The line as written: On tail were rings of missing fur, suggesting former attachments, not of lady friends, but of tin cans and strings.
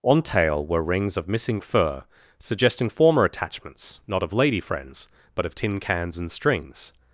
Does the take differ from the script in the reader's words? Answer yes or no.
no